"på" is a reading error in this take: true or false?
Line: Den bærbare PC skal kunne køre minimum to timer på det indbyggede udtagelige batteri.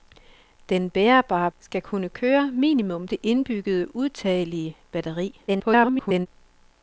true